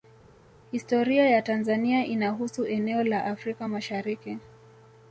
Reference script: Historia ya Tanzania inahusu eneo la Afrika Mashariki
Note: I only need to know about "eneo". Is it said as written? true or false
true